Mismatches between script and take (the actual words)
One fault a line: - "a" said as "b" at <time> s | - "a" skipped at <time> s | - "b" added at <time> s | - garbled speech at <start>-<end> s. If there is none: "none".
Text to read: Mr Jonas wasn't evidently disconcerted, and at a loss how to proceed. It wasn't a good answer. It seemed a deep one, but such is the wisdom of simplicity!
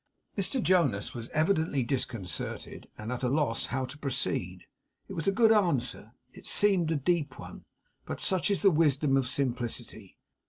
- "wasn't" said as "was" at 1.1 s
- "wasn't" said as "was" at 5.1 s